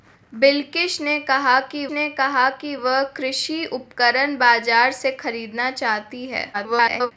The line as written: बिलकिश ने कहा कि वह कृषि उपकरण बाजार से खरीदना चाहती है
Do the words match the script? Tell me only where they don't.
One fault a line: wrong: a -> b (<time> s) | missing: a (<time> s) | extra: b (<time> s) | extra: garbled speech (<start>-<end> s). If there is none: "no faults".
extra: ने कहा कि (1.9 s)
extra: garbled speech (6.5-7.1 s)